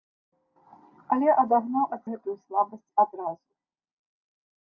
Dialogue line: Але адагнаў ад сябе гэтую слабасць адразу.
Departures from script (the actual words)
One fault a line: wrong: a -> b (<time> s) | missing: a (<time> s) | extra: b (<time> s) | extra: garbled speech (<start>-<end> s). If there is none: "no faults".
missing: сябе (2.0 s)